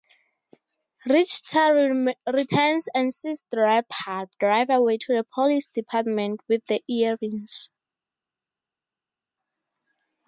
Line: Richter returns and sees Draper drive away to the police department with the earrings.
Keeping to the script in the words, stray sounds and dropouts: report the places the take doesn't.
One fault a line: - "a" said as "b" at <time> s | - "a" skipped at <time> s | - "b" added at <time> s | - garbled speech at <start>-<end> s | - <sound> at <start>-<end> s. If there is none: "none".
none